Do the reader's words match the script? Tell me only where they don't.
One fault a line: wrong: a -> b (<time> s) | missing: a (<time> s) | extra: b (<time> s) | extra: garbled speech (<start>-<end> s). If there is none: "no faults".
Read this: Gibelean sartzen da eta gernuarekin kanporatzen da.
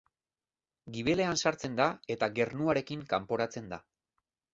no faults